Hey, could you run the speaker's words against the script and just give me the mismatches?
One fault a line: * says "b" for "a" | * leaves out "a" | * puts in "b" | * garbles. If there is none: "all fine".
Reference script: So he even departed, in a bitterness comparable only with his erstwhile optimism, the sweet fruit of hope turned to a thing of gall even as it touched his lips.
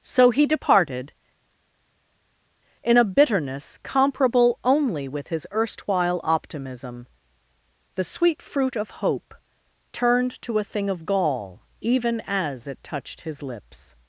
* leaves out "even"